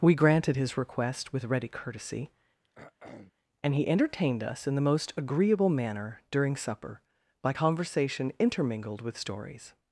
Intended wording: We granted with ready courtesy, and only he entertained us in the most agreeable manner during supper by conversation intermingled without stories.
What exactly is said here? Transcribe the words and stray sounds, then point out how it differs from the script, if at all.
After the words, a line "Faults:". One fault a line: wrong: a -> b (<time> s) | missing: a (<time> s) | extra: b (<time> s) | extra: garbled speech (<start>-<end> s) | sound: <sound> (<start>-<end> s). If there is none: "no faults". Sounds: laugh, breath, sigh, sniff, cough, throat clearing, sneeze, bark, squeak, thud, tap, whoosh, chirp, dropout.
We granted his request with ready courtesy, and he entertained us in the most agreeable manner during supper by conversation intermingled with stories.
Faults:
extra: his request (0.5 s)
sound: throat clearing (2.6-3.3 s)
missing: only (3.7 s)
wrong: without -> with (9.0 s)